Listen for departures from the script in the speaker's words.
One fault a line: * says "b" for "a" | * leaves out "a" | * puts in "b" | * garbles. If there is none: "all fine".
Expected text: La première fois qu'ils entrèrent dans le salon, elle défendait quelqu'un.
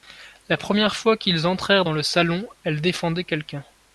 all fine